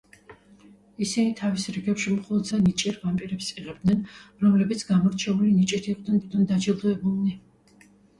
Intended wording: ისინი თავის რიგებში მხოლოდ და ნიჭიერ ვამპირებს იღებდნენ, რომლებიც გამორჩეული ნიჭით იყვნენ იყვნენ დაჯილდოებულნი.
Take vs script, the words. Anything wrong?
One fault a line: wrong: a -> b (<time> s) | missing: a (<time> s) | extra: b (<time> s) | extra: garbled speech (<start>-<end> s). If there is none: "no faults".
no faults